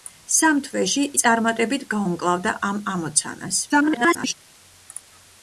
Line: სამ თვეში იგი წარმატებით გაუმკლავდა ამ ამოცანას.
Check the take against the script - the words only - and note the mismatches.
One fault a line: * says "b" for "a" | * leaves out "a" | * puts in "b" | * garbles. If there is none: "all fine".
* leaves out "იგი"
* garbles